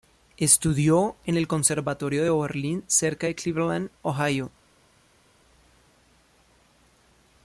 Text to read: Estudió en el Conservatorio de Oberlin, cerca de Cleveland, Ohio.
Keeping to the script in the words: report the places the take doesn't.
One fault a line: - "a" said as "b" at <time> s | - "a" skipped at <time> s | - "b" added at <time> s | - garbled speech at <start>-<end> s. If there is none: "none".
none